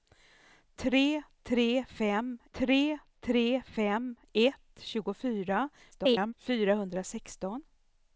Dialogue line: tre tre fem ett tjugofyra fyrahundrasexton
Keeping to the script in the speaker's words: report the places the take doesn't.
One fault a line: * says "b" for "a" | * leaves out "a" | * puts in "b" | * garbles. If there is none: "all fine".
* puts in "tre tre fem"
* garbles